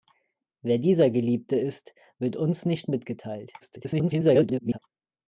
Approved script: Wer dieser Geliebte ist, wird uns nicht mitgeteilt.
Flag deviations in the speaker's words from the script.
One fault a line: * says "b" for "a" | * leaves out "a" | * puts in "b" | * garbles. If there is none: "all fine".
* garbles